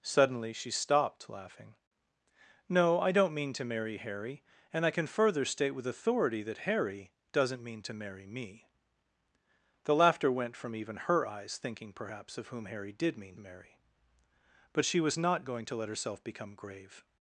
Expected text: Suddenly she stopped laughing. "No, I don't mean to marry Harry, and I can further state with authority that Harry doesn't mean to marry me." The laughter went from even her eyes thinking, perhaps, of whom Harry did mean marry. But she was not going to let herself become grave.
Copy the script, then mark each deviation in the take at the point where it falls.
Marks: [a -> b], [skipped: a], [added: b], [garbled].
Suddenly she stopped laughing. "No, I don't mean to marry Harry, and I can further state with authority that Harry doesn't mean to marry me." The laughter went from even her eyes thinking, perhaps, of whom Harry did mean marry. But she was not going to let herself become grave.